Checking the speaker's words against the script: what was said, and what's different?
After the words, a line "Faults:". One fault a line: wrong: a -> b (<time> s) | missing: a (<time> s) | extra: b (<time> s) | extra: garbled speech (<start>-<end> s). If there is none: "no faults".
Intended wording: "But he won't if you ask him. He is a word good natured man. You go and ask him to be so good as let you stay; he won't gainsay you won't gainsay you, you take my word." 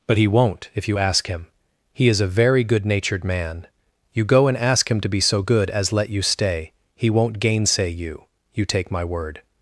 "But he won't if you ask him. He is a very good natured man. You go and ask him to be so good as let you stay; he won't gainsay you, you take my word."
Faults:
wrong: word -> very (2.3 s)
missing: won't gainsay you (8.3 s)